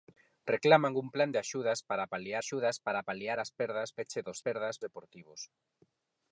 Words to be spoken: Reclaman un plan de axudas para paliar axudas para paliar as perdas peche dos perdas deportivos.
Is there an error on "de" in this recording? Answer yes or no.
no